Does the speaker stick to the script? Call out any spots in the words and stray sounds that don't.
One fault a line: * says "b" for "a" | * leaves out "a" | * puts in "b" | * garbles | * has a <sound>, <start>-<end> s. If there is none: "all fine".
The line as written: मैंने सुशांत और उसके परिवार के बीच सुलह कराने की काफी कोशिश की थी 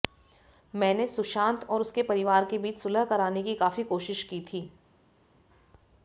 all fine